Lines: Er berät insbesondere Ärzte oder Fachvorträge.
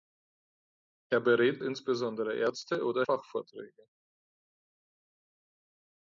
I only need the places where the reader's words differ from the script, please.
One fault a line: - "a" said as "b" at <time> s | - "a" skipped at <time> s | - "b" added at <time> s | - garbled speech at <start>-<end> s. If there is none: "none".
none